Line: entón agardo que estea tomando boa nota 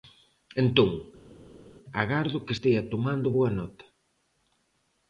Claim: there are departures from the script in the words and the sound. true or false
false